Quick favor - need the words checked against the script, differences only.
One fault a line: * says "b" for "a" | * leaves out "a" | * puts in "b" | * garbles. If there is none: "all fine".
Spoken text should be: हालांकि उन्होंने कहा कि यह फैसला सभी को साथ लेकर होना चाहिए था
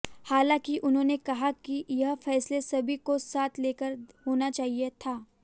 all fine